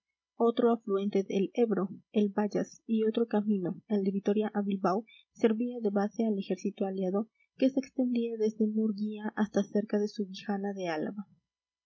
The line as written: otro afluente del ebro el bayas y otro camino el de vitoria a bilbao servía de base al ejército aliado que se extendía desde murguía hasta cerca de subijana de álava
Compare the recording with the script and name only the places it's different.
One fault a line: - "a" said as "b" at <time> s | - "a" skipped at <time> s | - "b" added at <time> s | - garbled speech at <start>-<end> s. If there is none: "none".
none